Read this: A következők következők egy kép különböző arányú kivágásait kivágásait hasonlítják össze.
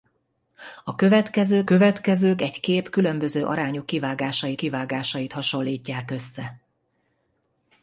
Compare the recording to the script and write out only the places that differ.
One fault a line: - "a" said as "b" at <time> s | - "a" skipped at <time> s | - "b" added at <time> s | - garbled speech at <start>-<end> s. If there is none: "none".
none